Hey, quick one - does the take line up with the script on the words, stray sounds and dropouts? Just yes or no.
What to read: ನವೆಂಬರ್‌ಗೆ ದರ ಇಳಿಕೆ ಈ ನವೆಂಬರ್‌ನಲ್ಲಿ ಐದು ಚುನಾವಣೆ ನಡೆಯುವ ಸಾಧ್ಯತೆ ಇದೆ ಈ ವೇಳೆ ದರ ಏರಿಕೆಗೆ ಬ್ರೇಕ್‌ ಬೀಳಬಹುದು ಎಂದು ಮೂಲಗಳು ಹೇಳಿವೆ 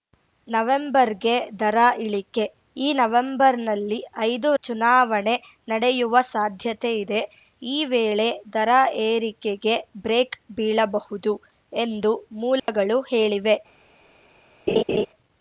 no